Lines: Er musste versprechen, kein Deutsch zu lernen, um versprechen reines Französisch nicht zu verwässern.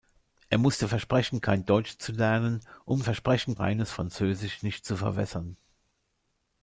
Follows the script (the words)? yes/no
yes